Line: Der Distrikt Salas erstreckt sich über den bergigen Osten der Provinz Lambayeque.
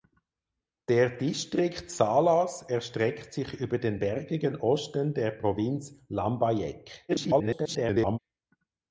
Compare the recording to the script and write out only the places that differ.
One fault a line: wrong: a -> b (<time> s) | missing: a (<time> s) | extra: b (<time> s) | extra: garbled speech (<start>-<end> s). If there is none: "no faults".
extra: garbled speech (7.1-8.2 s)